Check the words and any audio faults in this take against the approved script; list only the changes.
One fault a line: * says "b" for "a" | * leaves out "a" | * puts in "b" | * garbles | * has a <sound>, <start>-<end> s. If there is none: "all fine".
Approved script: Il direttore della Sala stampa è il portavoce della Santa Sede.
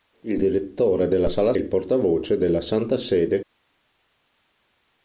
* leaves out "stampa è"